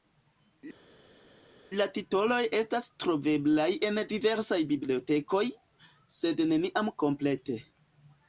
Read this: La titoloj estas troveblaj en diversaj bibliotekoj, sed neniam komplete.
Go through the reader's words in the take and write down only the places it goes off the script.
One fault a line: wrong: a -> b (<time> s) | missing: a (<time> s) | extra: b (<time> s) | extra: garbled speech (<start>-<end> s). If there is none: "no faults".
no faults